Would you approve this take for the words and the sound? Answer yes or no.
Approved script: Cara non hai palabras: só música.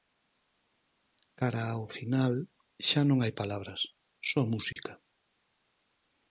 no